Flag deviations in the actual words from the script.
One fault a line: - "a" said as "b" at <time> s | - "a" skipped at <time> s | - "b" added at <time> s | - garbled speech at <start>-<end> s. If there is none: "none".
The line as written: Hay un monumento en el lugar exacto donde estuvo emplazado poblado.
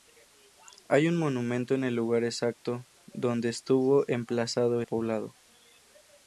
none